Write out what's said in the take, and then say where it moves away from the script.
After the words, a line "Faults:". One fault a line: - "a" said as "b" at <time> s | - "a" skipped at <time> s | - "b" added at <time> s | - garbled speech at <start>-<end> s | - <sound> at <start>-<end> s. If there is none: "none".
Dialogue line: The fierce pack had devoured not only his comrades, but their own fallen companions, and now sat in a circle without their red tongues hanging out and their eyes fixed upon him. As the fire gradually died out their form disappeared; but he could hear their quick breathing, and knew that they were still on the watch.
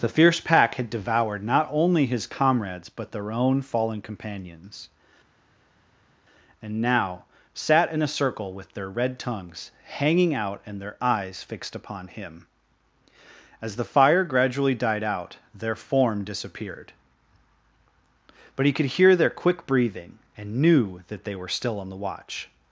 The fierce pack had devoured not only his comrades, but their own fallen companions, and now sat in a circle with their red tongues hanging out and their eyes fixed upon him. As the fire gradually died out their form disappeared; but he could hear their quick breathing, and knew that they were still on the watch.
Faults:
- "without" said as "with" at 8.5 s